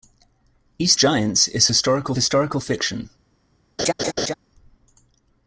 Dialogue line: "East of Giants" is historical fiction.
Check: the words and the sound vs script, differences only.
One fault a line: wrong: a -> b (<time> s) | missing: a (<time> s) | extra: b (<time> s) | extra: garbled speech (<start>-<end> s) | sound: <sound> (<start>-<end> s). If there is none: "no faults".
missing: of (1.0 s)
extra: historical (2.1 s)
sound: laugh (3.8-4.3 s)